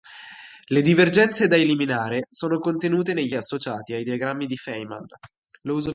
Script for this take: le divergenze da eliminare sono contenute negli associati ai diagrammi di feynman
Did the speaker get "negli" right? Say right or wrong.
right